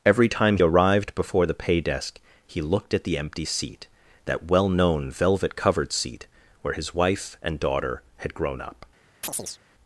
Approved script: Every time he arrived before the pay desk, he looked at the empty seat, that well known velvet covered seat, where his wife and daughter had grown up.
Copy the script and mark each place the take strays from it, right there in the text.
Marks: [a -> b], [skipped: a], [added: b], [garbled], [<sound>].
Every time [skipped: he] arrived before the pay desk, he looked at the empty seat, that well known velvet covered seat, where his wife and daughter had grown up. [chirp]